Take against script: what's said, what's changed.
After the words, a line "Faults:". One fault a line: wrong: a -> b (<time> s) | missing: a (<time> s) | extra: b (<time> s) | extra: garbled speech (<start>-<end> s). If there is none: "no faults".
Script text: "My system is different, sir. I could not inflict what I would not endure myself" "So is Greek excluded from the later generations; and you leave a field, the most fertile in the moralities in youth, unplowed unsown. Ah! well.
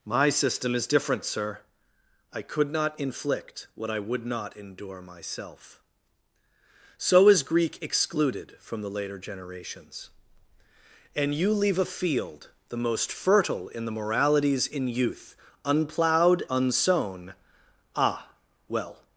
"My system is different, sir. I could not inflict what I would not endure myself" "So is Greek excluded from the later generations; and you leave a field, the most fertile in the moralities in youth, unplowed unsown. Ah! well.
Faults:
no faults